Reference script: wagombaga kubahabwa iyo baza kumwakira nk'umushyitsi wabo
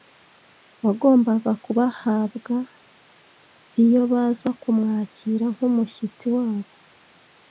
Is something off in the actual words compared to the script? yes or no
no